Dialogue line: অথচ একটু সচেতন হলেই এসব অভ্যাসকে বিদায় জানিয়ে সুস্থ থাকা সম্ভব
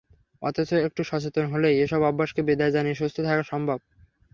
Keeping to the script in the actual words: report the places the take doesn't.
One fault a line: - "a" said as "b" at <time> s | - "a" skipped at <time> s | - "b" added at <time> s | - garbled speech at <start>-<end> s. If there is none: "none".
none